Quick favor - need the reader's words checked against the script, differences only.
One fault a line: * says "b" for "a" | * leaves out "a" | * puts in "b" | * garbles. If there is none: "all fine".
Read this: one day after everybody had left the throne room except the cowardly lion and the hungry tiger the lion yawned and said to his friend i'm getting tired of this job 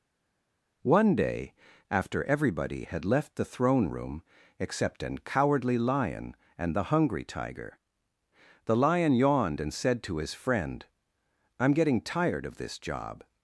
* says "an" for "the"